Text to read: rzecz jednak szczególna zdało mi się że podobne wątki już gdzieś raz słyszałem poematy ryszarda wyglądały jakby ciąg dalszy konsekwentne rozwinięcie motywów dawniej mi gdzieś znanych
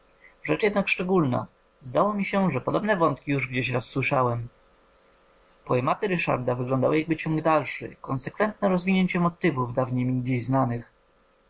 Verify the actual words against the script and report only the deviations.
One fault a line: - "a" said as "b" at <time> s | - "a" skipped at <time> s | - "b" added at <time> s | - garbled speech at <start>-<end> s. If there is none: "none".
none